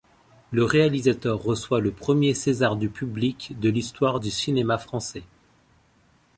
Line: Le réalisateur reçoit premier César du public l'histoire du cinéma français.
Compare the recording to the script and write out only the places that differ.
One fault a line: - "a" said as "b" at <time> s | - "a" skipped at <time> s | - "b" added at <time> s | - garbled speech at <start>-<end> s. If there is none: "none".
- "le" added at 1.8 s
- "de" added at 3.6 s